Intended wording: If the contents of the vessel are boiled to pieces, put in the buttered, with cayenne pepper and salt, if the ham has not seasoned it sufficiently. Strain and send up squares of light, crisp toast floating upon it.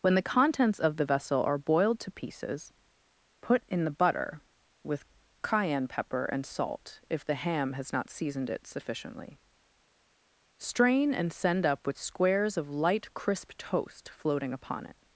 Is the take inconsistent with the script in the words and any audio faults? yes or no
yes